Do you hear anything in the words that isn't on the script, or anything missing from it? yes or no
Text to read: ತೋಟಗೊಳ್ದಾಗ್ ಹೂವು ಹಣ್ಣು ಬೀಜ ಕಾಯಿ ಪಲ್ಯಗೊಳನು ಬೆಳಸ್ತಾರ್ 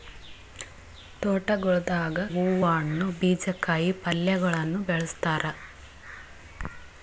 no